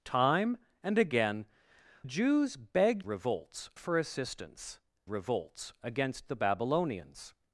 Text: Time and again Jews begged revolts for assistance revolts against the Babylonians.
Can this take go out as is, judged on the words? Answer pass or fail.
pass